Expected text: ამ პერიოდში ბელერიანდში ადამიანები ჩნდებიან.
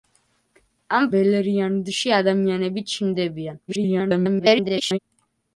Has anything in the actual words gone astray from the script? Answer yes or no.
yes